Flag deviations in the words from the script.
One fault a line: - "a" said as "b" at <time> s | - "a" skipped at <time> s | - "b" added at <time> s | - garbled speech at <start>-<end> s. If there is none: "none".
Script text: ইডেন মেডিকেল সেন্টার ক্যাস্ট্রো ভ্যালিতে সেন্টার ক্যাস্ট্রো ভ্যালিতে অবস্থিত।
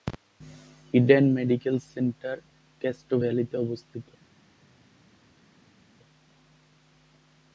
- "সেন্টার ক্যাস্ট্রো ভ্যালিতে" skipped at 3.6 s